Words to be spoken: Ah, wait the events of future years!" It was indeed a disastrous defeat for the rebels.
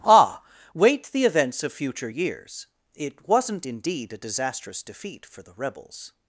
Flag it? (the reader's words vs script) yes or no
yes